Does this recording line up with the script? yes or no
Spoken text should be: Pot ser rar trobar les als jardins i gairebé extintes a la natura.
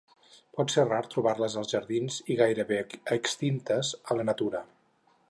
yes